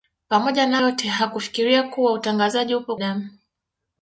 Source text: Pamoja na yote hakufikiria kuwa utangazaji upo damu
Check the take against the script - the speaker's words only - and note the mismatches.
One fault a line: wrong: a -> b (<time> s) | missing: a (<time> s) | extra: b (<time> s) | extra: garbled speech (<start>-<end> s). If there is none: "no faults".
no faults